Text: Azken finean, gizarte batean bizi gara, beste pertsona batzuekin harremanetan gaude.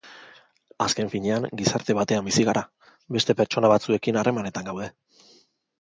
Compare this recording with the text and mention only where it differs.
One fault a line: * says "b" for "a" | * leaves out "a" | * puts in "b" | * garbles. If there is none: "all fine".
all fine